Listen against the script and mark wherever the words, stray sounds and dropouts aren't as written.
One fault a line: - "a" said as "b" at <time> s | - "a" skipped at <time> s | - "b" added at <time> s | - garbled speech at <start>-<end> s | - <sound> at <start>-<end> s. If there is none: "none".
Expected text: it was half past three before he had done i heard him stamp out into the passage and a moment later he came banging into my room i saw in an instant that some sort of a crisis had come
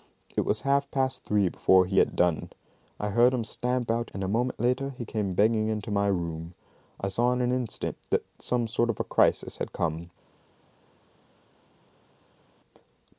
- "into the passage" skipped at 4.1 s